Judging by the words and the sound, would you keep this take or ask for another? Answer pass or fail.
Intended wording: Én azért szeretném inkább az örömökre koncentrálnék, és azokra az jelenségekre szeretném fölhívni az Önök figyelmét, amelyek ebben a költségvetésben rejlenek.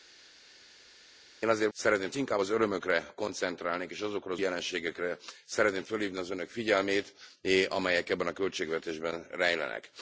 pass